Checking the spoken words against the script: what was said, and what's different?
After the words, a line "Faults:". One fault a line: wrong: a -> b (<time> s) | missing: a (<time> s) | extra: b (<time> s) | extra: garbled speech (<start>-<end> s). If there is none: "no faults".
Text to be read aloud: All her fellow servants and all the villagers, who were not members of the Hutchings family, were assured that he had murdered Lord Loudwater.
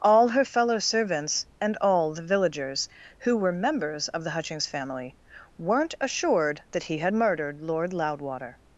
All her fellow servants and all the villagers, who were members of the Hutchings family, weren't assured that he had murdered Lord Loudwater.
Faults:
missing: not (3.5 s)
wrong: were -> weren't (5.6 s)